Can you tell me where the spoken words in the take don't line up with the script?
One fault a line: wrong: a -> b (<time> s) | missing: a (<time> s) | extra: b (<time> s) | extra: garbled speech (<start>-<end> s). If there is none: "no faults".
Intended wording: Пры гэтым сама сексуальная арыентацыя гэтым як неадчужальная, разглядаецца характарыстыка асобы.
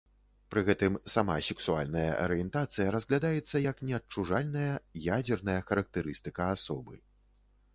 wrong: гэтым -> разглядаецца (3.0 s)
wrong: разглядаецца -> ядзерная (5.2 s)